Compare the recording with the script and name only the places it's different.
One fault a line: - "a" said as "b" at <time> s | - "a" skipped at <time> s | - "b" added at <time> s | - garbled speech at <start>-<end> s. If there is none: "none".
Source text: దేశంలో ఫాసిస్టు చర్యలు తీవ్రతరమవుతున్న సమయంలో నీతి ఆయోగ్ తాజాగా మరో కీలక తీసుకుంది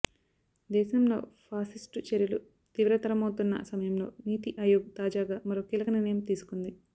- "నిర్ణయం" added at 5.9 s